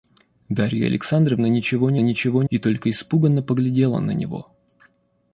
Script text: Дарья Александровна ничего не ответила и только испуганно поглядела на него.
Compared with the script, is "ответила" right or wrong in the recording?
wrong